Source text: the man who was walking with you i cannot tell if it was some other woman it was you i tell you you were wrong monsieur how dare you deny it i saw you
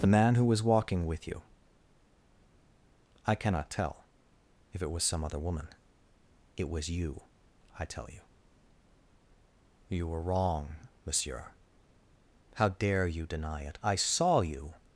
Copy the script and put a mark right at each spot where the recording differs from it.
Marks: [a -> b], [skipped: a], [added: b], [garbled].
the man who was walking with you i cannot tell if it was some other woman it was you i tell you you were wrong monsieur how dare you deny it i saw you